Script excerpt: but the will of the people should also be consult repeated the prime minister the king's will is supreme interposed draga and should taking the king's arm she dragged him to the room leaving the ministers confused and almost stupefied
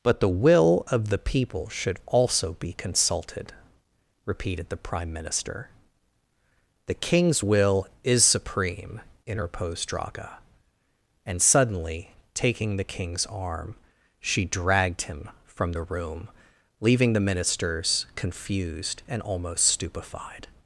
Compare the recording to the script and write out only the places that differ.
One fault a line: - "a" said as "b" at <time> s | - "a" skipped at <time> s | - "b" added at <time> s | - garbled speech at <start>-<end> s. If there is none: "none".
- "consult" said as "consulted" at 2.7 s
- "should" said as "suddenly" at 11.4 s
- "to" said as "from" at 15.4 s